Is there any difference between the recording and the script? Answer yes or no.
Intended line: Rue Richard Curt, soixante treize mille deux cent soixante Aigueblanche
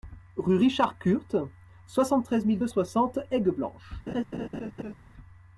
yes